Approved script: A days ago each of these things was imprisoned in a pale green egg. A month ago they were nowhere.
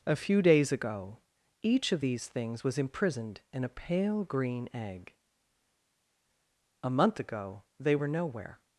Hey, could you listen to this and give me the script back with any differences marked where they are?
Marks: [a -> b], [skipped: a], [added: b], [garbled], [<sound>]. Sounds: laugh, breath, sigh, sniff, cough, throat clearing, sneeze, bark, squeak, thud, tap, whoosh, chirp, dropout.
A [added: few] days ago each of these things was imprisoned in a pale green egg. A month ago they were nowhere.